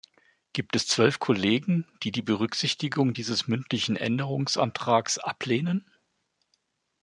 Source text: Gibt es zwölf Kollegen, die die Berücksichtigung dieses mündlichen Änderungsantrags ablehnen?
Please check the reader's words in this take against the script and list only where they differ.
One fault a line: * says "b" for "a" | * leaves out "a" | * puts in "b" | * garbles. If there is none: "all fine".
all fine